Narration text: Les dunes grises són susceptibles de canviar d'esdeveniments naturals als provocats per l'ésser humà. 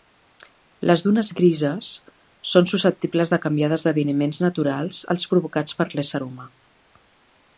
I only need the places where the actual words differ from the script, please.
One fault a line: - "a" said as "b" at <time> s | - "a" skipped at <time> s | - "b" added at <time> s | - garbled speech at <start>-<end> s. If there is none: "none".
none